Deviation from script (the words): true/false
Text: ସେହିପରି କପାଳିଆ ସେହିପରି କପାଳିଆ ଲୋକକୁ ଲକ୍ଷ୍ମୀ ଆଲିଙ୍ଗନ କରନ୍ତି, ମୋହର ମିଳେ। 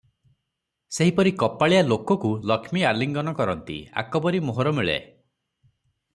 true